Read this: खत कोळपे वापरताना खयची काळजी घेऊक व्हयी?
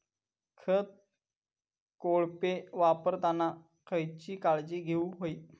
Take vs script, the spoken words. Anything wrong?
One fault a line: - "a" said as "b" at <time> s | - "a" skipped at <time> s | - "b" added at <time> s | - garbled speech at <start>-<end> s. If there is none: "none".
none